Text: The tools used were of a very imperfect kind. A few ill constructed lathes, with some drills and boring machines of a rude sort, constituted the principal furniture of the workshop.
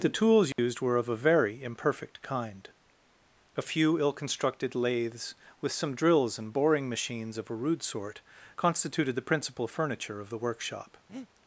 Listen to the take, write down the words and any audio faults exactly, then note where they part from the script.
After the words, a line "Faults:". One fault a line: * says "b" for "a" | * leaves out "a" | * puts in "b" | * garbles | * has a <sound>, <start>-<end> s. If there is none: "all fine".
The tools used were of a very imperfect kind. A few ill constructed lathes, with some drills and boring machines of a rude sort, constituted the principal furniture of the workshop.
Faults:
* has a dropout, 0.5-0.6 s
* has a breath, 11.1-11.3 s